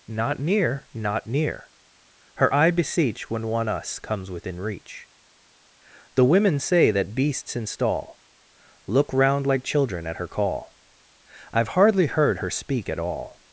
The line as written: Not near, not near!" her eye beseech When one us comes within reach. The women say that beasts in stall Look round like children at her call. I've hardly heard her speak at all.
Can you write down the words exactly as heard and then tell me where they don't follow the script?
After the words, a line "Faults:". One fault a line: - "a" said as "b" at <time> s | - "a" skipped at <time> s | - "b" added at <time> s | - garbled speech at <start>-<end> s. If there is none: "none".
Not near, not near!" her eye beseech When one us comes within reach. The women say that beasts in stall Look round like children at her call. I've hardly heard her speak at all.
Faults:
none